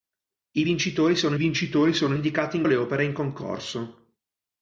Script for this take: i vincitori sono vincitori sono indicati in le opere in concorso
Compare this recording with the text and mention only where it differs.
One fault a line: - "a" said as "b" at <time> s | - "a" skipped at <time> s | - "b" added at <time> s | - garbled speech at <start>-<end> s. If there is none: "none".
none